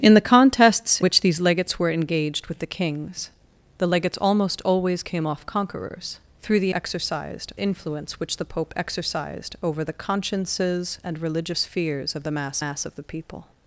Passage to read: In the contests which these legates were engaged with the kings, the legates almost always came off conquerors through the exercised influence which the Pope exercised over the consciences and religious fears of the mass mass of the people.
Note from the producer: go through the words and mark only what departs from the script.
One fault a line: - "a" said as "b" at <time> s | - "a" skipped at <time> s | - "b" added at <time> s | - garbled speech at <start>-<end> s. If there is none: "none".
none